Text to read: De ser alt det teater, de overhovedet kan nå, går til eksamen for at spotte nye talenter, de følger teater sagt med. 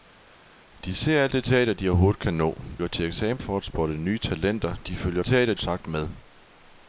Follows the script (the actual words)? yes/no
yes